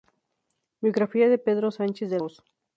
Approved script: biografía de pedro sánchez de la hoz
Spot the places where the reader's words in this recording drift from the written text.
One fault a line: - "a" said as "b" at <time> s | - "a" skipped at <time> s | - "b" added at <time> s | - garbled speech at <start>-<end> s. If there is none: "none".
- "la" skipped at 2.2 s